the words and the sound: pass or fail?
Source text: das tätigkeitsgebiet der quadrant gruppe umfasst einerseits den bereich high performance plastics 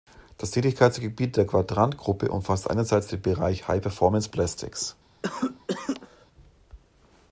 fail